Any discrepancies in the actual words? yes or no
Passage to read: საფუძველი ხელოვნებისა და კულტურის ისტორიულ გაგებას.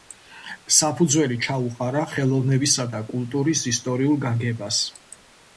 yes